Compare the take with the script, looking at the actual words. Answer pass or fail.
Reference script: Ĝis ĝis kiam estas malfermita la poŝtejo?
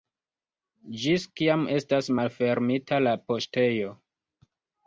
fail